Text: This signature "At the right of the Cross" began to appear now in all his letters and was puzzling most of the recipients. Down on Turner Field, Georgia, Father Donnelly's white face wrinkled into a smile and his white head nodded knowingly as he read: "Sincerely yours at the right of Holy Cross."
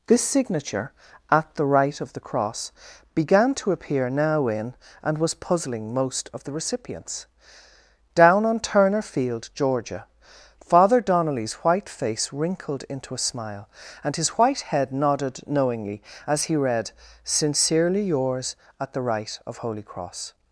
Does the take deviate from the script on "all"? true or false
true